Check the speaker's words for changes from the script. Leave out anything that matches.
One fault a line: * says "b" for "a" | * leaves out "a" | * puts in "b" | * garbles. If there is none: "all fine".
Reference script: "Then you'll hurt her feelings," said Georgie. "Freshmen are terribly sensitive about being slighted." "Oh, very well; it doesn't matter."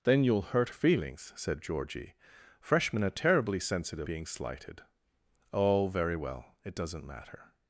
* leaves out "her"
* leaves out "about"